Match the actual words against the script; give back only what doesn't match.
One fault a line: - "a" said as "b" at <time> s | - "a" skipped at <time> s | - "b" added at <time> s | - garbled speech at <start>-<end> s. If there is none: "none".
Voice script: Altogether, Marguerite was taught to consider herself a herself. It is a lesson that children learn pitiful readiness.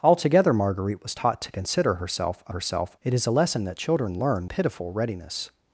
none